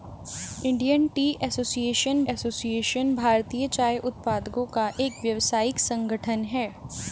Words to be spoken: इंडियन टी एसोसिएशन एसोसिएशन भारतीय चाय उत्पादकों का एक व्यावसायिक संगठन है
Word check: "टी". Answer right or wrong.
right